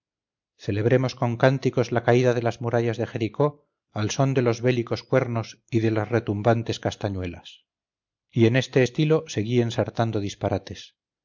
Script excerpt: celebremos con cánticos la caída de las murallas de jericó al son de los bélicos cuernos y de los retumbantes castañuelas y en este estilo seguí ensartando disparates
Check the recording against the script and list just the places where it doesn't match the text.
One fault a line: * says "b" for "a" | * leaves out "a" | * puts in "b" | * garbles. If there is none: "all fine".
* says "las" for "los"